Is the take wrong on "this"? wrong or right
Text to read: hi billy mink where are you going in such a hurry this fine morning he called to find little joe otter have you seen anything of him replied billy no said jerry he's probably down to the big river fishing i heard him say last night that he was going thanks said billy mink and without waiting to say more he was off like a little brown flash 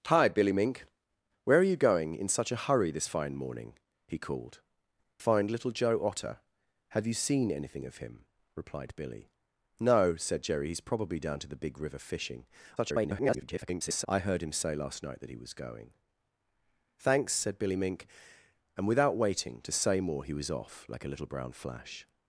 right